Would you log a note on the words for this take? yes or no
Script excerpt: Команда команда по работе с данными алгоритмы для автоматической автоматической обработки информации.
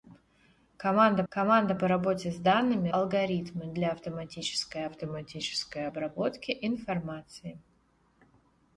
no